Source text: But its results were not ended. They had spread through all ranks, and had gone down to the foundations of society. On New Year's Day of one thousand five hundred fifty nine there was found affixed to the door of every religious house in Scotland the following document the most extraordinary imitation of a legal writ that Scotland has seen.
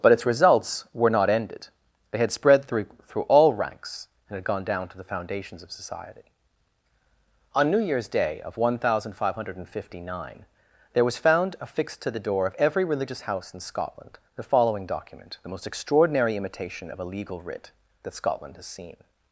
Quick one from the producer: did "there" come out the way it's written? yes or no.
yes